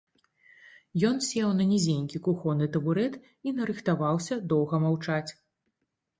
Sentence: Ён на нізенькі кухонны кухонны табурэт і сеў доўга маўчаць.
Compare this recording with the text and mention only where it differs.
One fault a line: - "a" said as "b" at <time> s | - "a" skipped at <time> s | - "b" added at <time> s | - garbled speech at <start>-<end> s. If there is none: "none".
- "сеў" added at 1.2 s
- "кухонны" skipped at 2.7 s
- "сеў" said as "нарыхтаваўся" at 3.6 s